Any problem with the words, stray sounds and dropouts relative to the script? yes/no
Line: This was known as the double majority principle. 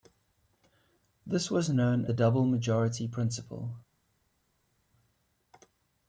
yes